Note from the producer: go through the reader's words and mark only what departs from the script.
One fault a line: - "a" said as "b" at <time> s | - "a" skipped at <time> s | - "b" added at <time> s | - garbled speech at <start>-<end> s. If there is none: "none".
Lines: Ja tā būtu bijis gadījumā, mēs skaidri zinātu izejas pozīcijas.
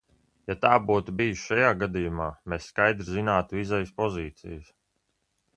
- "šajā" added at 1.5 s